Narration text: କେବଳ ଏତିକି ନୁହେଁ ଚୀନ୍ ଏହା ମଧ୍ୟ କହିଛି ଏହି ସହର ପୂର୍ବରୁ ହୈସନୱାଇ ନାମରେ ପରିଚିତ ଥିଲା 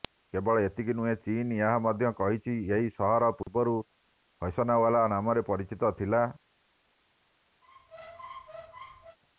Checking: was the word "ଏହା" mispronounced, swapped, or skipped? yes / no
no